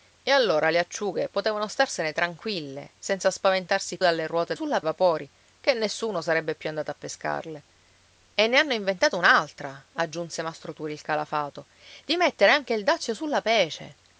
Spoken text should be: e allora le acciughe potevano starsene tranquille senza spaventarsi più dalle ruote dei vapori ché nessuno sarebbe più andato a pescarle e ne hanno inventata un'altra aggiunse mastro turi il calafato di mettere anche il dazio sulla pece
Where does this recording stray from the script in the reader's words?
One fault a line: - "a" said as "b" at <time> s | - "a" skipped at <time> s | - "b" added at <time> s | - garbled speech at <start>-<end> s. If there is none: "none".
- "più" skipped at 4.0 s
- "dei" said as "sulla" at 4.5 s